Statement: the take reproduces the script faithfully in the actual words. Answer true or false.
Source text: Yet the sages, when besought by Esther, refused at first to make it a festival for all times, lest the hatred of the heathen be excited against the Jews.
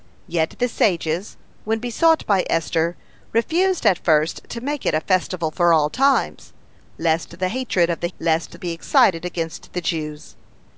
false